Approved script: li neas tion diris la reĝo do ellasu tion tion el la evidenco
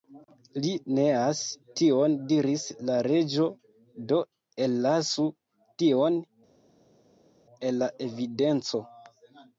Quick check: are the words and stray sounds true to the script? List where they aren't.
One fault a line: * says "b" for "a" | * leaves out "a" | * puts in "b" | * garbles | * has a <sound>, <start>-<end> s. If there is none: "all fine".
* leaves out "tion"